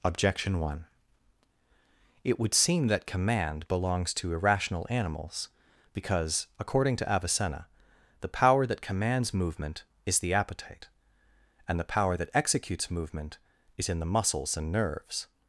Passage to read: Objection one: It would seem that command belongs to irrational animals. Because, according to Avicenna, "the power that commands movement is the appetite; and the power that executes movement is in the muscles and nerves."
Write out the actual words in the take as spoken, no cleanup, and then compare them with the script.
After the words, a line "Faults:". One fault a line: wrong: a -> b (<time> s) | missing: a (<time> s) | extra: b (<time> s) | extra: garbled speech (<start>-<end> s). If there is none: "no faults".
Objection one: It would seem that command belongs to irrational animals. Because, according to Avicenna, "the power that commands movement is the appetite; and the power that executes movement is in the muscles and nerves."
Faults:
no faults